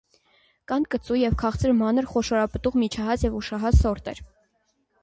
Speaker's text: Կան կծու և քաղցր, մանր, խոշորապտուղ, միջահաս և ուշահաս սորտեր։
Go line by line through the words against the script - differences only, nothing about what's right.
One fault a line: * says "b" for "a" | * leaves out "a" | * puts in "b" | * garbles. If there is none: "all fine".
all fine